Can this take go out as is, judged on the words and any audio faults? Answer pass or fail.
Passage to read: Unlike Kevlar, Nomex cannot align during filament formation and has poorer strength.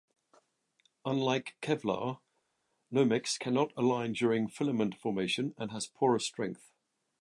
pass